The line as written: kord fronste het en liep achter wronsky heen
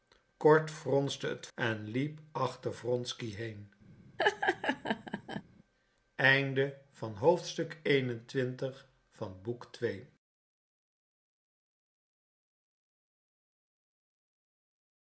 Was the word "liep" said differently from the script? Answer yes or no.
no